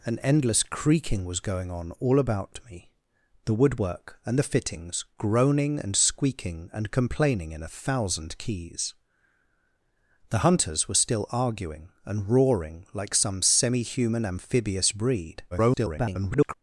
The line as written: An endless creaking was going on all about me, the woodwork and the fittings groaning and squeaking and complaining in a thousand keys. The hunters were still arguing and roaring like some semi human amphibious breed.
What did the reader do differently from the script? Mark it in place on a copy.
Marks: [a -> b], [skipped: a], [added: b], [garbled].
An endless creaking was going on all about me, the woodwork and the fittings groaning and squeaking and complaining in a thousand keys. The hunters were still arguing and roaring like some semi human amphibious breed. [garbled]